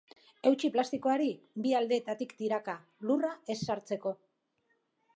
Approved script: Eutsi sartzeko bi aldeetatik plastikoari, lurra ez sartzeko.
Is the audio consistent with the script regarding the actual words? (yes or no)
no